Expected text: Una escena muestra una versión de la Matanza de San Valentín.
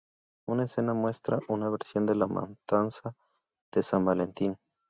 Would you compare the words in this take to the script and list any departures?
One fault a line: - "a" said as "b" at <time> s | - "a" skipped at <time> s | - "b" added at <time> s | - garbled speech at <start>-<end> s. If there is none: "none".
none